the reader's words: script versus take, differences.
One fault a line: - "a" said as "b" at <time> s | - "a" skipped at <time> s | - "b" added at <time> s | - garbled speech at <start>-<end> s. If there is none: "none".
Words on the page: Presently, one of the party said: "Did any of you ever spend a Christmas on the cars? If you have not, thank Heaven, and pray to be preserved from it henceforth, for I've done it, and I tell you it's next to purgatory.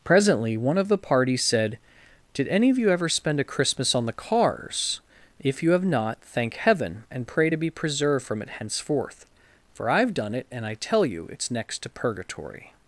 none